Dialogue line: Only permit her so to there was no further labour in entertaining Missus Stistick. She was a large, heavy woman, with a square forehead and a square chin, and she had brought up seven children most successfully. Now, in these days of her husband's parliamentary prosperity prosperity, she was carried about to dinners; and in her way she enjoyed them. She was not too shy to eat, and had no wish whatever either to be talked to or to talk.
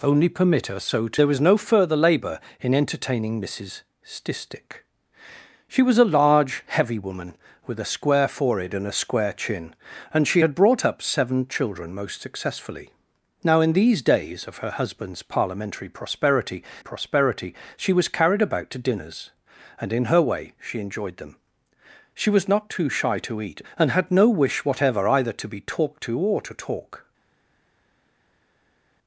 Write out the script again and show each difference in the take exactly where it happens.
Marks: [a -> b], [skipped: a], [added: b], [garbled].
Only permit her so to there was no further labour in entertaining Missus Stistick. She was a large, heavy woman, with a square forehead and a square chin, and she had brought up seven children most successfully. Now, in these days of her husband's parliamentary prosperity prosperity, she was carried about to dinners; and in her way she enjoyed them. She was not too shy to eat, and had no wish whatever either to be talked to or to talk.